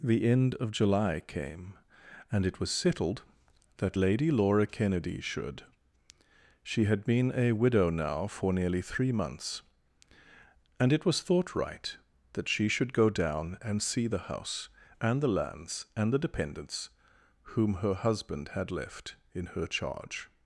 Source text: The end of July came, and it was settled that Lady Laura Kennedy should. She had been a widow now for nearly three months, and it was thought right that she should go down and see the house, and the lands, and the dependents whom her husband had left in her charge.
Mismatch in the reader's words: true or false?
false